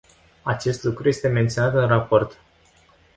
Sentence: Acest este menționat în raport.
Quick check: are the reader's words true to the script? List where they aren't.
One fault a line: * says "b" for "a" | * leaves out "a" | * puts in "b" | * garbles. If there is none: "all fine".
* puts in "lucru"